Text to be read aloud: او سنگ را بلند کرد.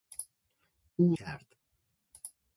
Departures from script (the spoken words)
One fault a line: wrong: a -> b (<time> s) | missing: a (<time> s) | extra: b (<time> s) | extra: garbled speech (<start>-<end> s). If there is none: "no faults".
missing: سنگ را بلند (1.2 s)